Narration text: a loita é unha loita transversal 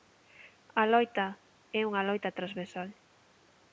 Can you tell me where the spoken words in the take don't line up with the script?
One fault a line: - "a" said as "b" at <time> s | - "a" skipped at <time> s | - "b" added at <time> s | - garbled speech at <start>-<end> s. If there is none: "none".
none